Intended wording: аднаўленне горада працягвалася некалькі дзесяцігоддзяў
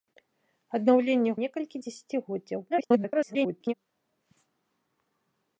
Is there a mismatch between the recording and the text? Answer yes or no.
yes